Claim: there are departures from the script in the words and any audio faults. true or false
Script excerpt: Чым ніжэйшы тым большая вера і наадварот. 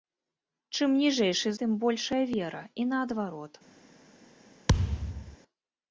true